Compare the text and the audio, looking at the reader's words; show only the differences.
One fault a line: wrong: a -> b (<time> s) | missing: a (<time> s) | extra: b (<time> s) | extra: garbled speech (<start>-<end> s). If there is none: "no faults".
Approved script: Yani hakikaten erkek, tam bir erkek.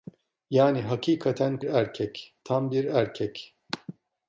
no faults